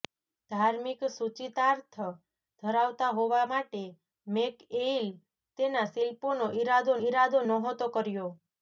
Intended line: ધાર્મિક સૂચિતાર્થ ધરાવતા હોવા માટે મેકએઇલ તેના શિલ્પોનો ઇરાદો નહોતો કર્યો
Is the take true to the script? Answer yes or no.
no